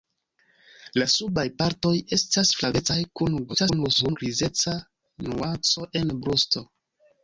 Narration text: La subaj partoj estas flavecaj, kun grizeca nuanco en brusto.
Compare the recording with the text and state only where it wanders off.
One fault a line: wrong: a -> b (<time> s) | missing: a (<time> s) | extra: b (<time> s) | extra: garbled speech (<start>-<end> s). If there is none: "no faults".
extra: garbled speech (3.5-4.2 s)